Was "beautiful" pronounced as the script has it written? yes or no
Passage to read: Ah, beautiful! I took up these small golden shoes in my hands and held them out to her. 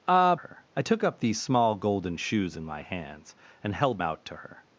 no